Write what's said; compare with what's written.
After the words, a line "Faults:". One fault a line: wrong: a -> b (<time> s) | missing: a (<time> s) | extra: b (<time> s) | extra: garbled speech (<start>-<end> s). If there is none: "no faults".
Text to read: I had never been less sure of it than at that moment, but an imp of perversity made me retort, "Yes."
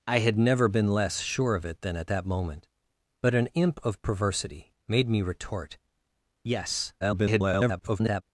I had never been less sure of it than at that moment, but an imp of perversity made me retort, "Yes." [garbled]
Faults:
extra: garbled speech (7.0-8.2 s)